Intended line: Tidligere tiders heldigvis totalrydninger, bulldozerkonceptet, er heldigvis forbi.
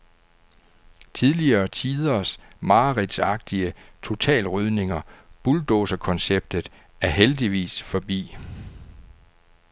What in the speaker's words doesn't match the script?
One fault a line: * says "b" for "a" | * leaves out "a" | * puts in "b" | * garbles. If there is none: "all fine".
* says "mareridtsagtige" for "heldigvis"